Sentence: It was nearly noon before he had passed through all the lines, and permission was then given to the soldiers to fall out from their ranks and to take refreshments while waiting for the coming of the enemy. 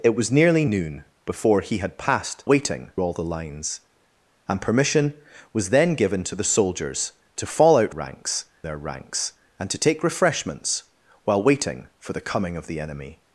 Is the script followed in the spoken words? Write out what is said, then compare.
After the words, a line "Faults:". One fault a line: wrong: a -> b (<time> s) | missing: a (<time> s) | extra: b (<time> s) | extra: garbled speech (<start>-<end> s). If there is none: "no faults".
It was nearly noon before he had passed waiting all the lines, and permission was then given to the soldiers to fall out ranks their ranks and to take refreshments while waiting for the coming of the enemy.
Faults:
wrong: through -> waiting (2.4 s)
wrong: from -> ranks (7.9 s)